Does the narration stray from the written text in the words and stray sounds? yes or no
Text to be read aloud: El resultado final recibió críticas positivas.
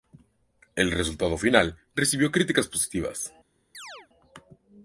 yes